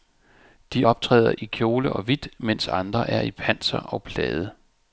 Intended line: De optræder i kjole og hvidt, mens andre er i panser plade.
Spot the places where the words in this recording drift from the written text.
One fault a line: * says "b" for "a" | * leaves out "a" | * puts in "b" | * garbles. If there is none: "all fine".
* puts in "og"